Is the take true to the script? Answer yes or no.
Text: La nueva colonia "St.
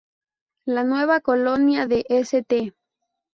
no